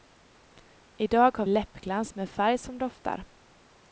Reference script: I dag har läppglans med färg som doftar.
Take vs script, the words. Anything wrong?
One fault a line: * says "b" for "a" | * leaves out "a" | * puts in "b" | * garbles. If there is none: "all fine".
all fine